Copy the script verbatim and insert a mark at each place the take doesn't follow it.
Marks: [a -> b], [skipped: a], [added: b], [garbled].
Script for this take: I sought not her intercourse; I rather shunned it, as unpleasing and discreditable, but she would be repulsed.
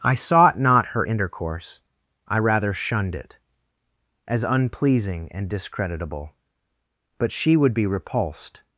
I sought not her intercourse; I rather shunned it, as unpleasing and discreditable, but she would be repulsed.